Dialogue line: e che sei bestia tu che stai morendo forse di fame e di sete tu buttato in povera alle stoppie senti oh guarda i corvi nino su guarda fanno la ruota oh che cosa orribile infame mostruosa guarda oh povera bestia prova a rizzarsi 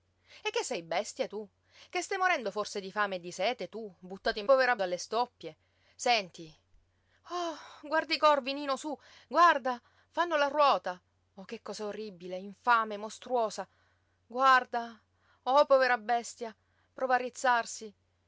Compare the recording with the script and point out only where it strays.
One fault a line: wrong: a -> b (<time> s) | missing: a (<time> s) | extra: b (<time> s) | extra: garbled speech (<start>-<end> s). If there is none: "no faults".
no faults